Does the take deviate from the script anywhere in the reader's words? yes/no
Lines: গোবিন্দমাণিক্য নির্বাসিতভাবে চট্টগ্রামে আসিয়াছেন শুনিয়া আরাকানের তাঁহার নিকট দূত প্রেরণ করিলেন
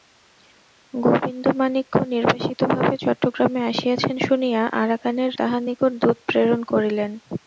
no